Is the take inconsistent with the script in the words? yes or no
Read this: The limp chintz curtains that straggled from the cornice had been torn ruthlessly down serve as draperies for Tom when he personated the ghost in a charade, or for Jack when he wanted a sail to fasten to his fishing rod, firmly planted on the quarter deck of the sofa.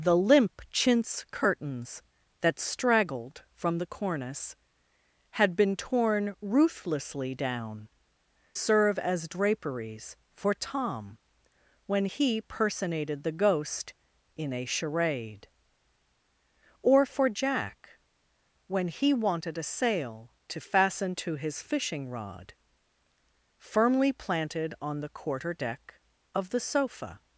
no